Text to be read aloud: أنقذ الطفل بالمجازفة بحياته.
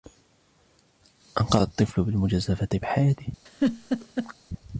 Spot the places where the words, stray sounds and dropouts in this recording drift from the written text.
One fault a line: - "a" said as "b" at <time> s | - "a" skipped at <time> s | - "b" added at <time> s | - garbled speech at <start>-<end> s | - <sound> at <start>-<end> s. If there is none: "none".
- laugh at 3.5-4.3 s